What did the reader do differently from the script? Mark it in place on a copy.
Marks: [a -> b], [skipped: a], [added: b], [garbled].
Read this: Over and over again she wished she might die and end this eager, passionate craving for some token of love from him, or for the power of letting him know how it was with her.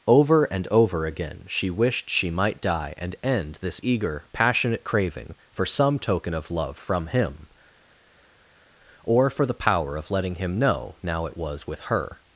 Over and over again she wished she might die and end this eager, passionate craving for some token of love from him, or for the power of letting him know [how -> now] it was with her.